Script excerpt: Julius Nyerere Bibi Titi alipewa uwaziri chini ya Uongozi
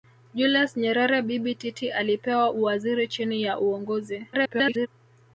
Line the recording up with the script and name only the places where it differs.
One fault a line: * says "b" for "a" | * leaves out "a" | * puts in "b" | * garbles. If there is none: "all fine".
* garbles